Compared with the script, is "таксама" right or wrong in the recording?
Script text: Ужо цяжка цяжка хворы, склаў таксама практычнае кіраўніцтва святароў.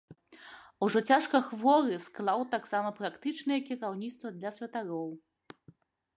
right